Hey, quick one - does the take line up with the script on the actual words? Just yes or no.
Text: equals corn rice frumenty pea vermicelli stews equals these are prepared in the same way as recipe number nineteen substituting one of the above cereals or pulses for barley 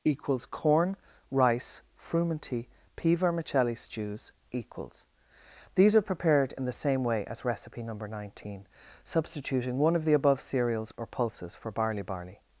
no